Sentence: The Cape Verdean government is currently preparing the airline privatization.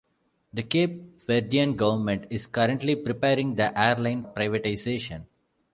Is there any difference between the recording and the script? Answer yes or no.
no